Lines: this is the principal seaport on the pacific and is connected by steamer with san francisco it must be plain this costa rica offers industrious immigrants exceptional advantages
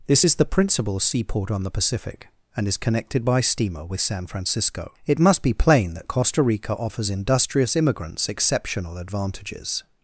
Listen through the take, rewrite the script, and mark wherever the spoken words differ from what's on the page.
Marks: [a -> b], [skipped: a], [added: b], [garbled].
this is the principal seaport on the pacific and is connected by steamer with san francisco it must be plain [this -> that] costa rica offers industrious immigrants exceptional advantages